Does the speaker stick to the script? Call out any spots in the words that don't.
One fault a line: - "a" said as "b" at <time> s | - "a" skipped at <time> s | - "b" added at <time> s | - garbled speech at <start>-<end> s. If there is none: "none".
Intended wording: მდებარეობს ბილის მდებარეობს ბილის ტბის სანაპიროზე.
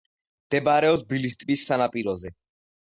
- "მდებარეობს ბილის" skipped at 1.4 s